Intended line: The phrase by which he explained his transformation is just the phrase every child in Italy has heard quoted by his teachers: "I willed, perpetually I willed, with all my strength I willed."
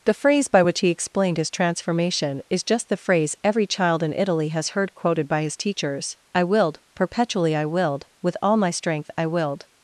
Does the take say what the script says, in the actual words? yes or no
yes